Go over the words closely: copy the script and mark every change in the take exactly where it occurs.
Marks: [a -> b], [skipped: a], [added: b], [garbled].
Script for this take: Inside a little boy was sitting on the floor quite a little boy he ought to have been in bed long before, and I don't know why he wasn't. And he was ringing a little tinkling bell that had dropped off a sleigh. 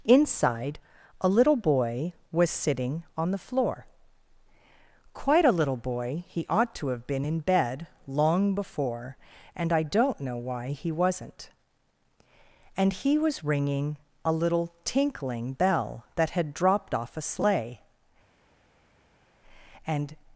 Inside a little boy was sitting on the floor quite a little boy he ought to have been in bed long before, and I don't know why he wasn't. And he was ringing a little tinkling bell that had dropped off a sleigh. [added: And]